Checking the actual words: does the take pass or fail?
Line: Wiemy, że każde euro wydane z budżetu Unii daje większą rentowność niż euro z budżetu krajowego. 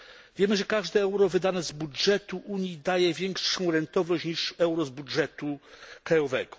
pass